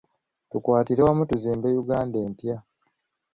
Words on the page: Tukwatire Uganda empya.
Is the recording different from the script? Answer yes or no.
yes